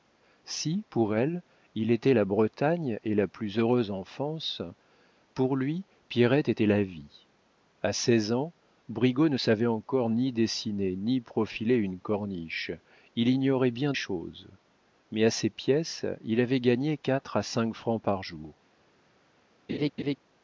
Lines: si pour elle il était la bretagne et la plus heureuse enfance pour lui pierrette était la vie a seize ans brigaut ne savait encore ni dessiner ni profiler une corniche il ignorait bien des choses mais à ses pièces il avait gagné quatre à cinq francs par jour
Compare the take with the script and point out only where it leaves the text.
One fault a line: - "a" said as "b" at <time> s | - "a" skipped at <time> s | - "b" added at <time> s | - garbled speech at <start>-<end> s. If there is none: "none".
- "des" skipped at 13.9 s